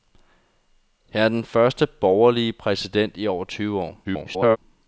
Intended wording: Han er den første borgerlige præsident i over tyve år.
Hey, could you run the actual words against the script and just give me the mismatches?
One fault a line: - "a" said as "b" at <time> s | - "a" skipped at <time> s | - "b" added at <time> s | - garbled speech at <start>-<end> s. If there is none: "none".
- garbled speech at 4.0-4.6 s